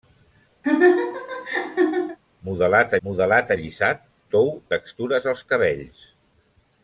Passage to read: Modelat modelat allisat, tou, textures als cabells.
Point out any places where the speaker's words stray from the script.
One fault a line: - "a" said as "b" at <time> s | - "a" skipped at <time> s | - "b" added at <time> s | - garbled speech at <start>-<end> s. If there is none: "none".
none